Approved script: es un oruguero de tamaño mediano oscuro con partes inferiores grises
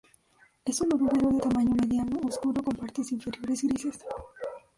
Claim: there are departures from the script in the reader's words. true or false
false